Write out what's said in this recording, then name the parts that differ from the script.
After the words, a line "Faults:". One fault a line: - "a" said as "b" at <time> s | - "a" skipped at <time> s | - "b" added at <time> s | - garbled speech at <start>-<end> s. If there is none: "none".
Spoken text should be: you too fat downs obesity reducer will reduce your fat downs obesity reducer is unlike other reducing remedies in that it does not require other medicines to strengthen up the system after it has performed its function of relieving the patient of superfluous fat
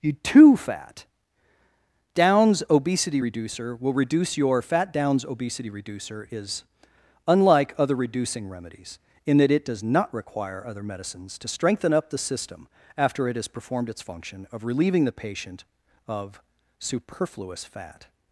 you too fat downs obesity reducer will reduce your fat downs obesity reducer is unlike other reducing remedies in that it does not require other medicines to strengthen up the system after it has performed its function of relieving the patient of superfluous fat
Faults:
none